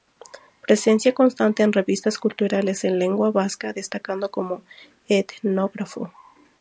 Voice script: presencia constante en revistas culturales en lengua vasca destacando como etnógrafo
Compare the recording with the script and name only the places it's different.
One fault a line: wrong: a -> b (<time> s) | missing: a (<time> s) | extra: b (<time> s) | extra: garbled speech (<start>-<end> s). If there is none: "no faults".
no faults